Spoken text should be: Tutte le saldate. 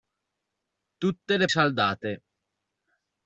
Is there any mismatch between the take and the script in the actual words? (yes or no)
no